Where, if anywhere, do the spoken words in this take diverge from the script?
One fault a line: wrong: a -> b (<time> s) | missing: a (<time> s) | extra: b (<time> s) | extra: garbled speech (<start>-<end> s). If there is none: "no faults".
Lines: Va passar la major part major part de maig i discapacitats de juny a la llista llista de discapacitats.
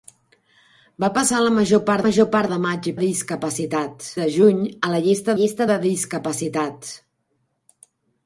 no faults